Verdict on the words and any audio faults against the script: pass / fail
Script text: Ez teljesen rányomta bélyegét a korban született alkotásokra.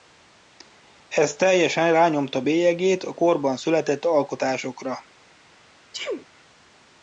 fail